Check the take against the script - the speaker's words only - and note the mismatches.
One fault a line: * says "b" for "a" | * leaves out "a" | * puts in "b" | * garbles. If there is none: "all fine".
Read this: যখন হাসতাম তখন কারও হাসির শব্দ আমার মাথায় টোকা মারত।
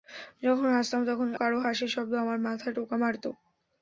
all fine